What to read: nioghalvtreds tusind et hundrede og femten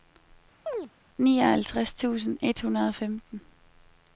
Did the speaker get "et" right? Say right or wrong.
right